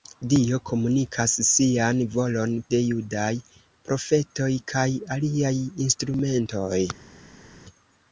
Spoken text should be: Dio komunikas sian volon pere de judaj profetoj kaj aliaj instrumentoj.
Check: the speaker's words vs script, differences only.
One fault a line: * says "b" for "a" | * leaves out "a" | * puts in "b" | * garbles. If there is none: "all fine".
* leaves out "pere"